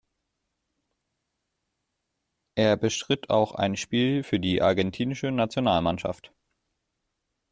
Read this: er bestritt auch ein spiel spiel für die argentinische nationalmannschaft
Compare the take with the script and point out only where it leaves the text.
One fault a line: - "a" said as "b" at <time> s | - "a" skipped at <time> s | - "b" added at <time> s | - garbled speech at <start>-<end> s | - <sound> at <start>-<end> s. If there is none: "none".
- "spiel" skipped at 4.2 s